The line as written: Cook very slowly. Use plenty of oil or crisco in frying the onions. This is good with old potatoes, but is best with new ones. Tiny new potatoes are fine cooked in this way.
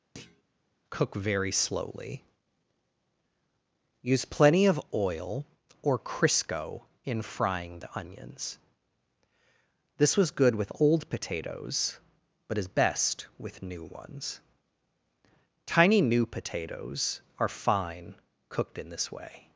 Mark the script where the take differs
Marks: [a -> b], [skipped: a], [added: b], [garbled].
Cook very slowly. Use plenty of oil or crisco in frying the onions. This [is -> was] good with old potatoes, but is best with new ones. Tiny new potatoes are fine cooked in this way.